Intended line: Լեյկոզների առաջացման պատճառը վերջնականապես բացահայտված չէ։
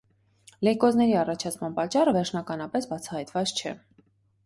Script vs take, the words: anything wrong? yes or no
no